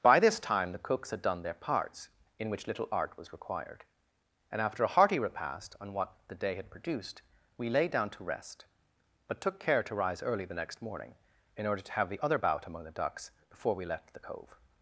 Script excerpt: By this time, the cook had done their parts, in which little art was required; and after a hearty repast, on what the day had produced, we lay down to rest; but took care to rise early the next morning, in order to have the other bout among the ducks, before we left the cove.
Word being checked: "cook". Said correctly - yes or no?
no